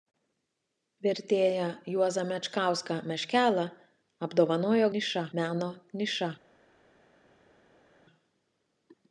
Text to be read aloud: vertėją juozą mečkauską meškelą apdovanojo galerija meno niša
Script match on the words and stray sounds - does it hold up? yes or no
no